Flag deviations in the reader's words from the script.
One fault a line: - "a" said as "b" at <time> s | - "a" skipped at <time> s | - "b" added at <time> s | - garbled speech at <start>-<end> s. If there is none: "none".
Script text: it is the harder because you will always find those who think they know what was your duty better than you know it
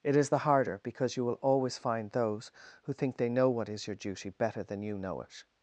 - "was" said as "is" at 3.7 s